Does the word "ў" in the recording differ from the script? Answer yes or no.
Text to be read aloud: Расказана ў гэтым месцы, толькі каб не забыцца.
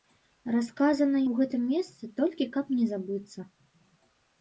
no